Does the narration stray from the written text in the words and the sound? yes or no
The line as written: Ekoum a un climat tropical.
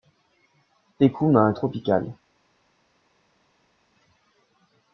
yes